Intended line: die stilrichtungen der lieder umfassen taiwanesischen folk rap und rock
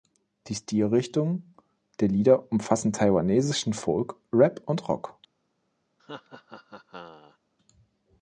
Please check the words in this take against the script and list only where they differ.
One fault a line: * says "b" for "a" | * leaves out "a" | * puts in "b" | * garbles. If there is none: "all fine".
all fine